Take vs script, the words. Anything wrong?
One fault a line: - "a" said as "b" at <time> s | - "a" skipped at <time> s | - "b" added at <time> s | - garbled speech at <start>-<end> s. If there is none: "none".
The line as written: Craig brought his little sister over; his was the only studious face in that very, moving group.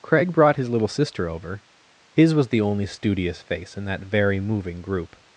none